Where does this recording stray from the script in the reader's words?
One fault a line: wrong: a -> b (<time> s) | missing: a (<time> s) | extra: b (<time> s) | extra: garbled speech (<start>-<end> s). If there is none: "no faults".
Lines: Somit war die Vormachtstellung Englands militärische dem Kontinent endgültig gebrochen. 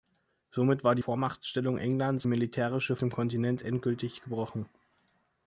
no faults